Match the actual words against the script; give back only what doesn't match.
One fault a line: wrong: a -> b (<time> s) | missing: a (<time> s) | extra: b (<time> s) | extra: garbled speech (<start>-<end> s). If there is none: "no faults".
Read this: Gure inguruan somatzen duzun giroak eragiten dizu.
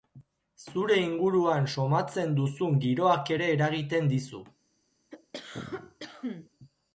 wrong: Gure -> Zure (0.7 s)
extra: ere (3.4 s)